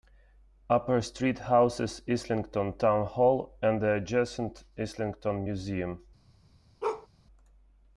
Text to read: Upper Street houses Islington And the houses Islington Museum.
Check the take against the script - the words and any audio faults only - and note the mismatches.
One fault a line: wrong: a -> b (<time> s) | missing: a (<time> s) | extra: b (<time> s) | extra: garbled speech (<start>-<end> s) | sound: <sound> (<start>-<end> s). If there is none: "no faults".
extra: Town Hall (2.8 s)
wrong: houses -> adjacent (3.9 s)
sound: bark (6.8-7.1 s)